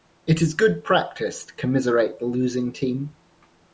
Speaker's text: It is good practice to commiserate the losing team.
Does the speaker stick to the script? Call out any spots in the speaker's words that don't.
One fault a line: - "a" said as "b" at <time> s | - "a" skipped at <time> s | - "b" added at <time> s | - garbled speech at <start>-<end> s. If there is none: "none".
none